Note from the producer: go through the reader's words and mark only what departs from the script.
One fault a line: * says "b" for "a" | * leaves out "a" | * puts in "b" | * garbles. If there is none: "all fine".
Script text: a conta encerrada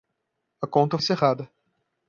all fine